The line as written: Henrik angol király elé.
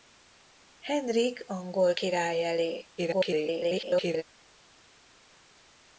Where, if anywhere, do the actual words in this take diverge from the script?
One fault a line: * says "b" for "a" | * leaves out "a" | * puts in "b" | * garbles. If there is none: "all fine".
* garbles